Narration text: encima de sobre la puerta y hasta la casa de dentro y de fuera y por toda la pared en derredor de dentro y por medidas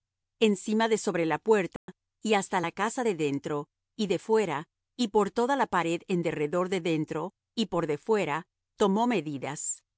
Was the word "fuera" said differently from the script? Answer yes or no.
no